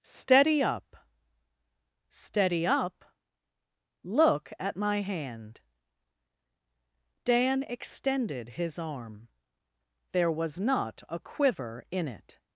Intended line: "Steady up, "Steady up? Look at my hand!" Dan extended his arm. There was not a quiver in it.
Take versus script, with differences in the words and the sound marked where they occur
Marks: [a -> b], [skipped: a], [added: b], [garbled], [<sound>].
"Steady up, "Steady up? Look at my hand!" Dan extended his arm. There was not a quiver in it.